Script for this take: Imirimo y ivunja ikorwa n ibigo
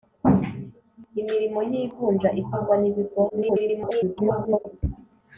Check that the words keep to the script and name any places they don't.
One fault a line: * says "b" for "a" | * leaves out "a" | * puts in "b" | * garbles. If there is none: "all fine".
* garbles